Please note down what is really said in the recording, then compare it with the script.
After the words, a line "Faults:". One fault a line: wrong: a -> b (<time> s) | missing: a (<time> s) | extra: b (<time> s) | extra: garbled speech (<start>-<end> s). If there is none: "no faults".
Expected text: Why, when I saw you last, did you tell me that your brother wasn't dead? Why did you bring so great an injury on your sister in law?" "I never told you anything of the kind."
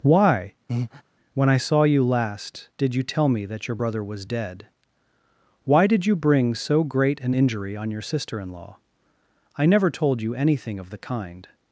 Why, when I saw you last, did you tell me that your brother was dead? Why did you bring so great an injury on your sister in law?" "I never told you anything of the kind."
Faults:
wrong: wasn't -> was (4.0 s)